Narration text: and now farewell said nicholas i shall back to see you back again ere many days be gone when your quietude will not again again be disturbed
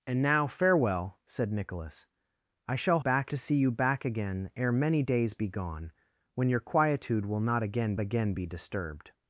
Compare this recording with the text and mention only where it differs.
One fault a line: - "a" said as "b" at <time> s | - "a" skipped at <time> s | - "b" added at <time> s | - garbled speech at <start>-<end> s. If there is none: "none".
none